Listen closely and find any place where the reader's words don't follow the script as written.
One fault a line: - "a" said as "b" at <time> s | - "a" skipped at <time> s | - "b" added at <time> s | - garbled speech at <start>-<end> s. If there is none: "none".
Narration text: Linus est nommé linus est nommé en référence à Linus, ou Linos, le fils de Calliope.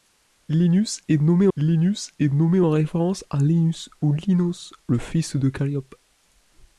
none